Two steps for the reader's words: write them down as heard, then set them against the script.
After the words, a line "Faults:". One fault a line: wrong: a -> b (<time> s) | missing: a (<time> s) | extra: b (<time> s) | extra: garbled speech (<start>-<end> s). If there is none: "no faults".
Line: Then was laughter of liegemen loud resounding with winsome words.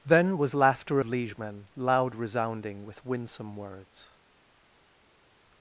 Then was laughter liegemen loud resounding with winsome words.
Faults:
missing: of (1.0 s)